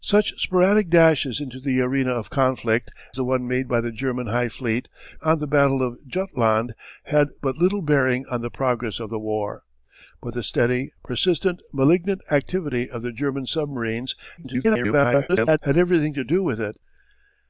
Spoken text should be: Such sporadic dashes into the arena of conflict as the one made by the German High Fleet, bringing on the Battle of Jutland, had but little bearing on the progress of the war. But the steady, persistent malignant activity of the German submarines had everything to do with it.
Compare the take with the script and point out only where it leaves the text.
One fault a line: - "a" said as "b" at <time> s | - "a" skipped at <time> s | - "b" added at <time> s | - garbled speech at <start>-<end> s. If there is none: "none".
- "as" skipped at 2.9 s
- "bringing" skipped at 4.9 s
- garbled speech at 14.4-15.6 s